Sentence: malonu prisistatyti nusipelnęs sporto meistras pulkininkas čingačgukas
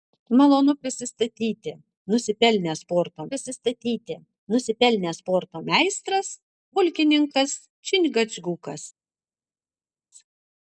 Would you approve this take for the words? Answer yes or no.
no